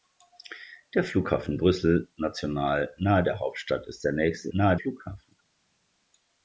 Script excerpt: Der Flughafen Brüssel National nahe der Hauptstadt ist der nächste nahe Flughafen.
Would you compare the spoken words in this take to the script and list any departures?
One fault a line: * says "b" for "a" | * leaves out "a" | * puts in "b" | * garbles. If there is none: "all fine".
all fine